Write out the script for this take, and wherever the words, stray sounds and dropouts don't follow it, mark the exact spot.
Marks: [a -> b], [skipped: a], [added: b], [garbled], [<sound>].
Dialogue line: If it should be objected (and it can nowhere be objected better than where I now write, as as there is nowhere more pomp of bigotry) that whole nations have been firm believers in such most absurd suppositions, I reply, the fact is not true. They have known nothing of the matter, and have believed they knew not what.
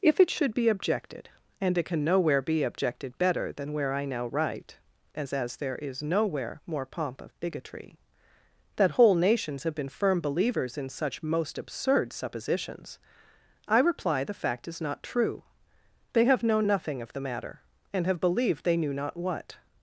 If it should be objected (and it can nowhere be objected better than where I now write, as as there is nowhere more pomp of bigotry) that whole nations have been firm believers in such most absurd suppositions, I reply, the fact is not true. They have known nothing of the matter, and have believed they knew not what.